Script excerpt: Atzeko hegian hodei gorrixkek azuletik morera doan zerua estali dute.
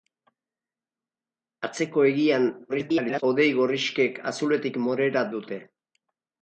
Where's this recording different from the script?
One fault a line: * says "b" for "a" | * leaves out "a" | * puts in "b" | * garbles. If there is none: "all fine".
* garbles
* leaves out "doan zerua estali"